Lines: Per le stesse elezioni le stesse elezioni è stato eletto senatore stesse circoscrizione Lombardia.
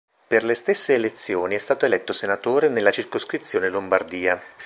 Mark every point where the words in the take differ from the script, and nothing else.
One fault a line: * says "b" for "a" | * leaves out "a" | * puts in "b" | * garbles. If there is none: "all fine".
* leaves out "le stesse elezioni"
* says "nella" for "stesse"